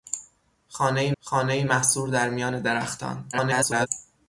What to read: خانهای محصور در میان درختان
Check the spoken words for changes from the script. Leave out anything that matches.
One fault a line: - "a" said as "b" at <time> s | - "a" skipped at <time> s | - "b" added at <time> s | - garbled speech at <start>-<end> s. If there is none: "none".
- "خانهای" added at 1.2 s
- garbled speech at 3.3-3.9 s